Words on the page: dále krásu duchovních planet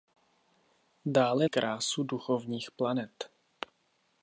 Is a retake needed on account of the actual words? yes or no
no